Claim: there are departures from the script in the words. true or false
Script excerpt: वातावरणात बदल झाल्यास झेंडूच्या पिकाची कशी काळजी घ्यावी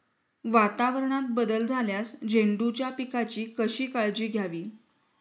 false